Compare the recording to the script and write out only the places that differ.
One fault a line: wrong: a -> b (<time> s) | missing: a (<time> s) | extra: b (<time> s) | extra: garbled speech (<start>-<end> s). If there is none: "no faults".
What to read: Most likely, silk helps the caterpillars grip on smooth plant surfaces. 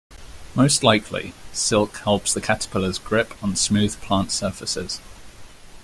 no faults